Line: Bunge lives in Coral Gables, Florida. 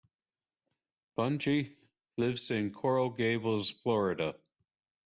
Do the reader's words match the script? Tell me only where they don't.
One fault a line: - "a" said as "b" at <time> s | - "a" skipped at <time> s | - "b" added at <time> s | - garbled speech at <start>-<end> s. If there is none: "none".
none